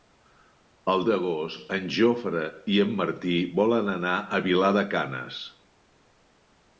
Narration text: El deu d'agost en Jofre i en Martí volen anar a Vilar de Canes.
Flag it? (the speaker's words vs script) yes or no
yes